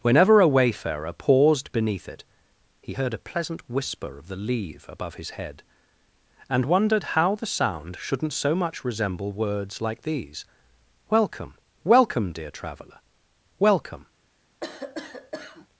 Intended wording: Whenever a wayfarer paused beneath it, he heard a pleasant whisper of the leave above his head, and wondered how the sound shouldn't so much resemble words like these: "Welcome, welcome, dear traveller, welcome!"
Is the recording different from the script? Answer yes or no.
no